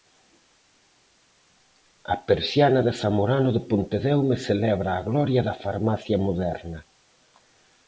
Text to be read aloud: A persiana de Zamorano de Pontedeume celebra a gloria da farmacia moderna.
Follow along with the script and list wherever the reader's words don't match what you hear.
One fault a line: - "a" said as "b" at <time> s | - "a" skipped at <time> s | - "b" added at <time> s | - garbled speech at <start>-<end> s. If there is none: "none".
none